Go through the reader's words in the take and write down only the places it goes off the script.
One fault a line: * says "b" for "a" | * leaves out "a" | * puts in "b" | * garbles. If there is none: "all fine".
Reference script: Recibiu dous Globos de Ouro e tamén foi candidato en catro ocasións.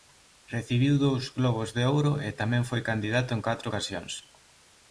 all fine